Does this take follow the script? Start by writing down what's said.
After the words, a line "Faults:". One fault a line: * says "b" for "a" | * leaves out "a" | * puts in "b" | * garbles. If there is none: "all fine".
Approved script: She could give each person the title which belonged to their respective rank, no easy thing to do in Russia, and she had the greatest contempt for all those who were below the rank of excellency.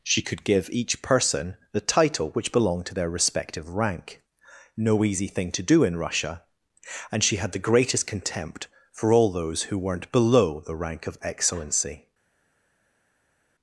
She could give each person the title which belonged to their respective rank, no easy thing to do in Russia, and she had the greatest contempt for all those who weren't below the rank of excellency.
Faults:
* says "weren't" for "were"